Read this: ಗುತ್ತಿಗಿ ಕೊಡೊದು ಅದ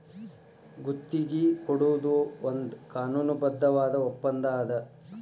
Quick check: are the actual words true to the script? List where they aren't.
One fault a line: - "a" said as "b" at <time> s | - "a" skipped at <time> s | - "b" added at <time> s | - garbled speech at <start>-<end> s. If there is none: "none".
- "ಒಂದ್ ಕಾನೂನುಬದ್ಧವಾದ ಒಪ್ಪಂದಾ" added at 2.4 s